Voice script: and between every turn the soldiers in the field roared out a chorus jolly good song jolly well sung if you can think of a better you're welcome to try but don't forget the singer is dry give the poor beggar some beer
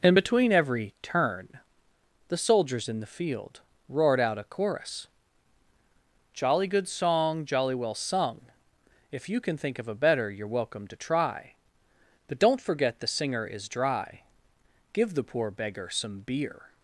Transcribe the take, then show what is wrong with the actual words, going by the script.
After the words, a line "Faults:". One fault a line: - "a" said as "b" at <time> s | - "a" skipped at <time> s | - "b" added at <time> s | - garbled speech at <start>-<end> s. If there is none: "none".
and between every turn the soldiers in the field roared out a chorus jolly good song jolly well sung if you can think of a better you're welcome to try but don't forget the singer is dry give the poor beggar some beer
Faults:
none